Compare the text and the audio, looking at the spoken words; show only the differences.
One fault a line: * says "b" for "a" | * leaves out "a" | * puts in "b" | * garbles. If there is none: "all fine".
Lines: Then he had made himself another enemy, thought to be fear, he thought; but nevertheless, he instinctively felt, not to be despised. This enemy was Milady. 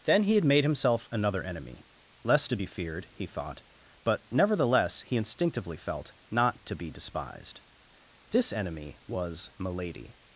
* says "less" for "thought"
* says "feared" for "fear"